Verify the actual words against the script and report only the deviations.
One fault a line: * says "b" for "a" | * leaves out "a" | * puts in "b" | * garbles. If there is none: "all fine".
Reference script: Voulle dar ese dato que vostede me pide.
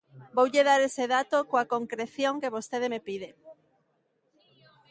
* puts in "coa concreción"